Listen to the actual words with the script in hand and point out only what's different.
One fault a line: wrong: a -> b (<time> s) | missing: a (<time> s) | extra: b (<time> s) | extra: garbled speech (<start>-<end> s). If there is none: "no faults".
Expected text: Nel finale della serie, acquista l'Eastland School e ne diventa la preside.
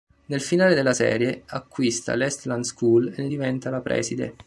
no faults